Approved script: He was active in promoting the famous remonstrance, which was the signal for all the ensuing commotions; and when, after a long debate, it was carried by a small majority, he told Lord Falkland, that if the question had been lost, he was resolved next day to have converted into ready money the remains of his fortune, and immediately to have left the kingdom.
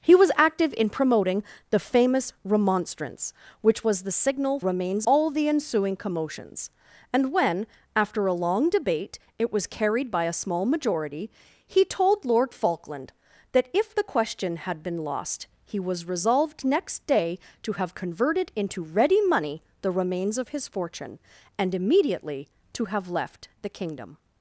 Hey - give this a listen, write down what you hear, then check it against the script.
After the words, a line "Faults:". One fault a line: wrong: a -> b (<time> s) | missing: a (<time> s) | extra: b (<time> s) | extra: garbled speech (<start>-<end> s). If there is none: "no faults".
He was active in promoting the famous remonstrance, which was the signal remains all the ensuing commotions; and when, after a long debate, it was carried by a small majority, he told Lord Falkland, that if the question had been lost, he was resolved next day to have converted into ready money the remains of his fortune, and immediately to have left the kingdom.
Faults:
wrong: for -> remains (4.6 s)